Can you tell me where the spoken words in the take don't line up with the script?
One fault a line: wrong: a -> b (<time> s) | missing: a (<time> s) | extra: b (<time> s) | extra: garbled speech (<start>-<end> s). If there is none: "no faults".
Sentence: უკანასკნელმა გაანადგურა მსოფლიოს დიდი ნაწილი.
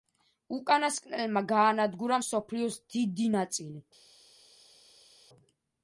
no faults